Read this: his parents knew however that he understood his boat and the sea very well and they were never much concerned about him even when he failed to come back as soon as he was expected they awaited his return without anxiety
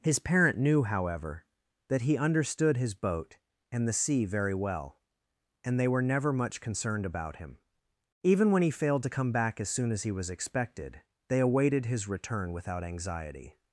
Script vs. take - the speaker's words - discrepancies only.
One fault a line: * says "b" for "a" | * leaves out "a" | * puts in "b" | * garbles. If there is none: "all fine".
* says "parent" for "parents"